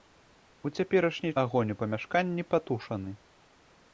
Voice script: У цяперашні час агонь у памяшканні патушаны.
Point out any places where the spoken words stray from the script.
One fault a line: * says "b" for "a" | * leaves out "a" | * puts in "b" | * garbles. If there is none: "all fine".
* leaves out "час"